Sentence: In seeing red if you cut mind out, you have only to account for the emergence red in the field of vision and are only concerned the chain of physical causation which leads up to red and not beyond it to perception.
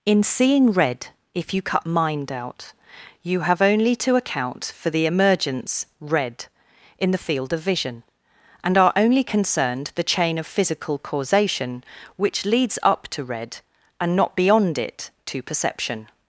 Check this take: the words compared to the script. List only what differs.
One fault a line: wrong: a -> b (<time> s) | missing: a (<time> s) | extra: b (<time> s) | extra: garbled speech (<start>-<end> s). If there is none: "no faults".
no faults